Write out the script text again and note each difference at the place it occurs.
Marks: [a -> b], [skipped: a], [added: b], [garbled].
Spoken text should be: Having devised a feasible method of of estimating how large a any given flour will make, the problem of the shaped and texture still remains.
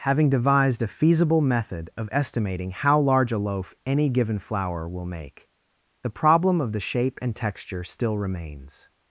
Having devised a feasible method of [skipped: of] estimating how large a [added: loaf] any given flour will make, the problem of the [shaped -> shape] and texture still remains.